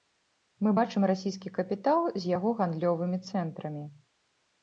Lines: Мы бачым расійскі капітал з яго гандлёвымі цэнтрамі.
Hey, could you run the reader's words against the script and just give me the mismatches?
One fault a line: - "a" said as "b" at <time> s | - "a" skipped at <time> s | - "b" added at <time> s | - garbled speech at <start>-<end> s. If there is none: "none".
none